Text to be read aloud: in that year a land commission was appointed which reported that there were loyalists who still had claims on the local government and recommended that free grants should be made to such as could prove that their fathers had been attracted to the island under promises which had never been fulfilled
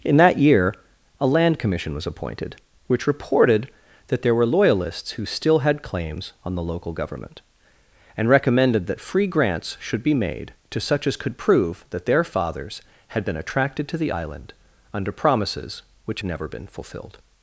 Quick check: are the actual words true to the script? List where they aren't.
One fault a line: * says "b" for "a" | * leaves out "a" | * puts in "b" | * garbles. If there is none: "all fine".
* leaves out "had"